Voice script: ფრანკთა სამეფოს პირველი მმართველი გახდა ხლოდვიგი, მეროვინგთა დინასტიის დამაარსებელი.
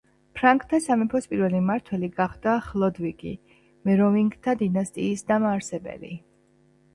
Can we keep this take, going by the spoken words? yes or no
yes